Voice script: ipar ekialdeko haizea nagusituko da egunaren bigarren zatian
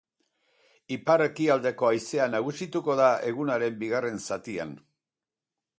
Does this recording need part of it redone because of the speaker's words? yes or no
no